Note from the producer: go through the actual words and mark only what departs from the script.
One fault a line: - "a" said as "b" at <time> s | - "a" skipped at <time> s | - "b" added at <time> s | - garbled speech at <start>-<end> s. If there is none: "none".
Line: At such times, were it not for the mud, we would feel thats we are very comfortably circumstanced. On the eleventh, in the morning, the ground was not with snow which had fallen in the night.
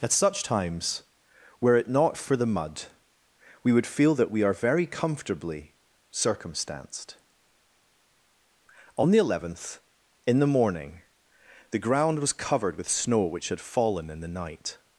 - "thats" said as "that" at 4.2 s
- "not" said as "covered" at 12.3 s